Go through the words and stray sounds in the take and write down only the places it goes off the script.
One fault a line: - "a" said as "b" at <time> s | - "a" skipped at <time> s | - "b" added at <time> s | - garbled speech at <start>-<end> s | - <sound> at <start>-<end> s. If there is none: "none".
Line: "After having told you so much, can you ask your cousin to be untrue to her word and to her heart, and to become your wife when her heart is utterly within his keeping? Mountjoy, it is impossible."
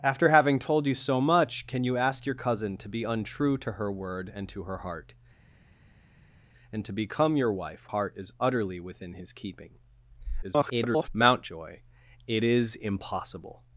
- "when her" skipped at 7.9 s
- garbled speech at 10.4-11.1 s